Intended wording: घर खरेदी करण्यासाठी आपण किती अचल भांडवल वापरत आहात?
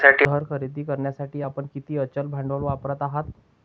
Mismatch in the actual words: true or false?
false